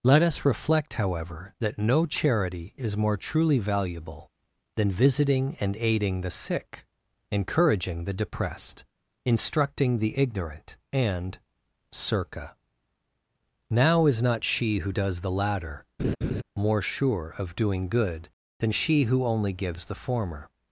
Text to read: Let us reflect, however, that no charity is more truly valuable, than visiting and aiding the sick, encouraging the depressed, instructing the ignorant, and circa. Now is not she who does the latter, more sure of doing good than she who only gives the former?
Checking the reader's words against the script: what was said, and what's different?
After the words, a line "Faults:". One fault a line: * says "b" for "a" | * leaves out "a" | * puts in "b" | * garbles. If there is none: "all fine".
Let us reflect, however, that no charity is more truly valuable, than visiting and aiding the sick, encouraging the depressed, instructing the ignorant, and circa. Now is not she who does the latter, more sure of doing good than she who only gives the former?
Faults:
all fine